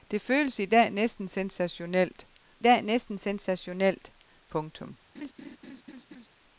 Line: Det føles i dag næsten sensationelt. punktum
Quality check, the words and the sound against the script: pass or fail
fail